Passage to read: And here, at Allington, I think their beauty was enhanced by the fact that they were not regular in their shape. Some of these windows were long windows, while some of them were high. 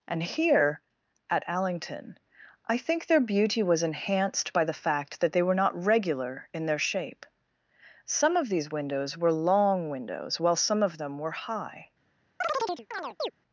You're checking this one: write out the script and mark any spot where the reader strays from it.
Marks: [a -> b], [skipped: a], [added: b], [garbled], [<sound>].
And here, at Allington, I think their beauty was enhanced by the fact that they were not regular in their shape. Some of these windows were long windows, while some of them were high. [chirp]